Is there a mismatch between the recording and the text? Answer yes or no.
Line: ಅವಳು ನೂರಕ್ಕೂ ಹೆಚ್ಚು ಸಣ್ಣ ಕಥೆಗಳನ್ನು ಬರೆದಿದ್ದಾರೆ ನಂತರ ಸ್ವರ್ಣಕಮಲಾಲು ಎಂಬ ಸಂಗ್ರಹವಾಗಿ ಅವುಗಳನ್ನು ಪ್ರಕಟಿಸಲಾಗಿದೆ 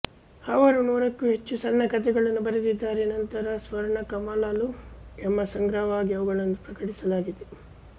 yes